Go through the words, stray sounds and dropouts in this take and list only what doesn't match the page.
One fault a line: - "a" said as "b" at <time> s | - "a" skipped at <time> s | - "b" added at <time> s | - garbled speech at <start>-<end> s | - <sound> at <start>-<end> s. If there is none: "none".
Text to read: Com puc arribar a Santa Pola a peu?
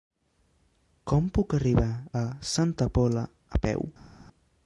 none